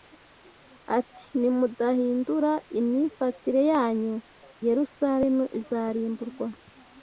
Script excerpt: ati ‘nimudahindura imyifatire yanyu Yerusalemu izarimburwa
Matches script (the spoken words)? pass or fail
pass